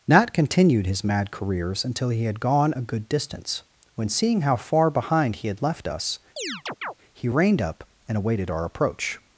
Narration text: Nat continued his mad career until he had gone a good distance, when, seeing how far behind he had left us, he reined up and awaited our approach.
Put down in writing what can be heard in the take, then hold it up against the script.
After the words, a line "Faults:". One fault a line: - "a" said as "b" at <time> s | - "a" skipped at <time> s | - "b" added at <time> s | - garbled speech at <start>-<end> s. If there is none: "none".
Nat continued his mad careers until he had gone a good distance, when, seeing how far behind he had left us, he reined up and awaited our approach.
Faults:
- "career" said as "careers" at 1.3 s